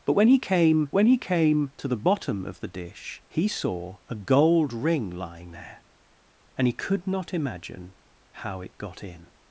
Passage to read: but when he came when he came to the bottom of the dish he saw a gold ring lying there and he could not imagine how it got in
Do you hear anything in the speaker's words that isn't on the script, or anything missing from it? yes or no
no